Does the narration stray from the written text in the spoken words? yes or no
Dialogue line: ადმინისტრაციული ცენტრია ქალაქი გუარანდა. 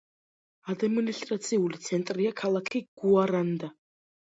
no